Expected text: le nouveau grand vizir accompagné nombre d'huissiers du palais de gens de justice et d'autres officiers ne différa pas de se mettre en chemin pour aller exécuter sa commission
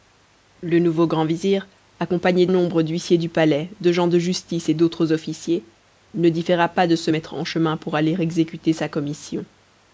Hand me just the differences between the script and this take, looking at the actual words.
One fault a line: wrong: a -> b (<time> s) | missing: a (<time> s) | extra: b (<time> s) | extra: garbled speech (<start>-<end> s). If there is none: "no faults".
no faults